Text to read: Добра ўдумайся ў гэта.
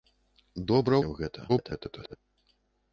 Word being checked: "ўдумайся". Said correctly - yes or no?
no